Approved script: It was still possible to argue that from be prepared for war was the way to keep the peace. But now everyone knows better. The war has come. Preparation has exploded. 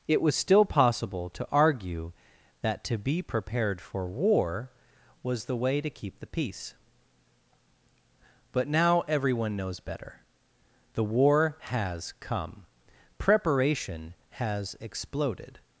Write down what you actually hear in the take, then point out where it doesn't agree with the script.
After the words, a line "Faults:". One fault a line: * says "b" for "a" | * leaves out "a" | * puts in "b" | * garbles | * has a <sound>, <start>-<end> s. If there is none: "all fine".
It was still possible to argue that to be prepared for war was the way to keep the peace. But now everyone knows better. The war has come. Preparation has exploded.
Faults:
* says "to" for "from"